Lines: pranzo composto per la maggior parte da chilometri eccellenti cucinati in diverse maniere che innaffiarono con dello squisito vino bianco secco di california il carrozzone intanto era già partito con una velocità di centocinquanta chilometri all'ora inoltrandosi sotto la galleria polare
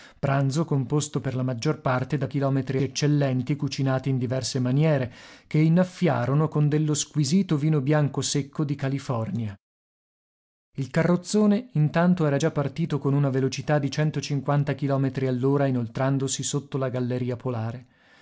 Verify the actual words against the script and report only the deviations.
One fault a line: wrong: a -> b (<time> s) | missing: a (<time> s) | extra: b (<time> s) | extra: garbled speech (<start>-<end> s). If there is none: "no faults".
no faults